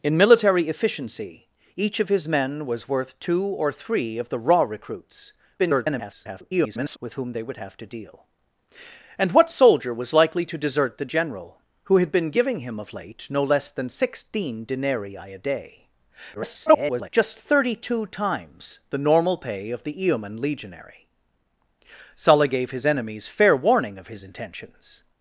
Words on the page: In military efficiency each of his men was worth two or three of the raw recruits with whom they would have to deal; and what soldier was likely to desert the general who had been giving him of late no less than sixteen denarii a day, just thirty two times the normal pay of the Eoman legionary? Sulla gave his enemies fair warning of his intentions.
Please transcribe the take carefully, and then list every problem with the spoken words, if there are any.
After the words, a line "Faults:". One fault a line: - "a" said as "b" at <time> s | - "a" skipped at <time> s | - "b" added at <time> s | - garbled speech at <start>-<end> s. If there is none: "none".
In military efficiency each of his men was worth two or three of the raw recruits [garbled] with whom they would have to deal; and what soldier was likely to desert the general who had been giving him of late no less than sixteen denarii a day, [garbled] just thirty two times the normal pay of the Eoman legionary? Sulla gave his enemies fair warning of his intentions.
Faults:
- garbled speech at 5.6-7.0 s
- garbled speech at 16.3-17.1 s